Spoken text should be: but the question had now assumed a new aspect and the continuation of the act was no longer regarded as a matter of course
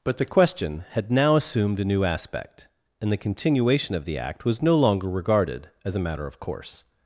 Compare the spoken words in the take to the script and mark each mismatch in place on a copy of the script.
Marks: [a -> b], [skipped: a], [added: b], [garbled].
but the question had now assumed a new aspect and the continuation of the act was no longer regarded as a matter of course